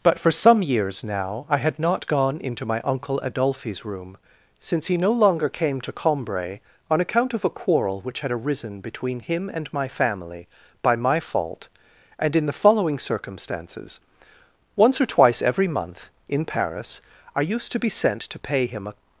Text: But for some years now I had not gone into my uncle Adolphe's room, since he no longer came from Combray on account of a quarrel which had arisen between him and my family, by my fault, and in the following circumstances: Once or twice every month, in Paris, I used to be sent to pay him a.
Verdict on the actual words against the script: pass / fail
fail